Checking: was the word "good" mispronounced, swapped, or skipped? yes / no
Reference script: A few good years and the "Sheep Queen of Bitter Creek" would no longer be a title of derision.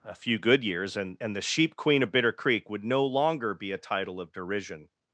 no